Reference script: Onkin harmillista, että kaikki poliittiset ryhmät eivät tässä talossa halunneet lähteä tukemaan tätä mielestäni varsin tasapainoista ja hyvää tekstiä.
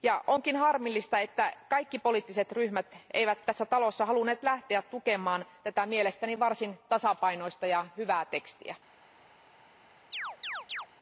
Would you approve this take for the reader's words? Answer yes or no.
yes